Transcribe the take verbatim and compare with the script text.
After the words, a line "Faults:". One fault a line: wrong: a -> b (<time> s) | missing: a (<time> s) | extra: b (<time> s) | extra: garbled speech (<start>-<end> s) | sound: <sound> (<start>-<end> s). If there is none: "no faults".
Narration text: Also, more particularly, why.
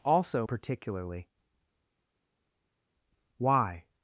Also, particularly, why.
Faults:
missing: more (0.5 s)